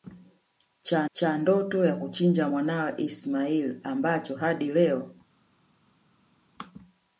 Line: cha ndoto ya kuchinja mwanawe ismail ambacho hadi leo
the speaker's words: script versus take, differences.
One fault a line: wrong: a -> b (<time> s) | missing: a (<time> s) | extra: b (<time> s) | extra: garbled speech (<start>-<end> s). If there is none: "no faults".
extra: cha (1.1 s)